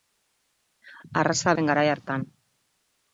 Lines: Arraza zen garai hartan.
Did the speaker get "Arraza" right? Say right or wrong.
right